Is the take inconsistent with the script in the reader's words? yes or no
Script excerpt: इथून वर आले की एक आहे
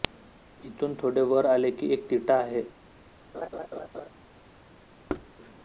yes